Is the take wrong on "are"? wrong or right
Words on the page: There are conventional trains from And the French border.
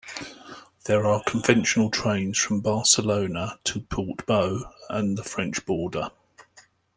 right